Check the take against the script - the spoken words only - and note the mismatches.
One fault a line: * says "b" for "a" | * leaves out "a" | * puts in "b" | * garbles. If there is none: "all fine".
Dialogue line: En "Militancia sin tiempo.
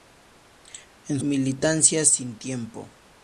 all fine